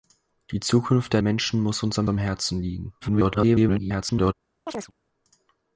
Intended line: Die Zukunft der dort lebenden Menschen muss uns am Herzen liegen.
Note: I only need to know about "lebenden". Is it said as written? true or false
false